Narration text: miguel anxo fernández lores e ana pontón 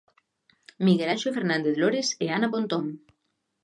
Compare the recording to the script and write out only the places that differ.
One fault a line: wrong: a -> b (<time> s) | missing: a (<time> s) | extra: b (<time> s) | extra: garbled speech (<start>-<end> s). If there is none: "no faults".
no faults